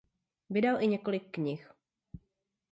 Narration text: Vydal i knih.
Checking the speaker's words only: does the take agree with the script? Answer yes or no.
no